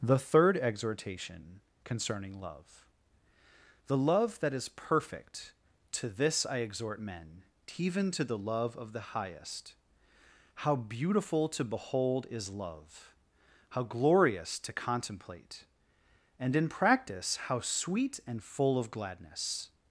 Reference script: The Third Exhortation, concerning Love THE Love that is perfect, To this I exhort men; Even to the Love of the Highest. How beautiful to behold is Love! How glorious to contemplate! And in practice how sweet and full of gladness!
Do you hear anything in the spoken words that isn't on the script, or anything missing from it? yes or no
no